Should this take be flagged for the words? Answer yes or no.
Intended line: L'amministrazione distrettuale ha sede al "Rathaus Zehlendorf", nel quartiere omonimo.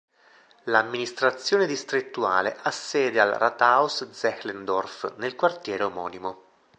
no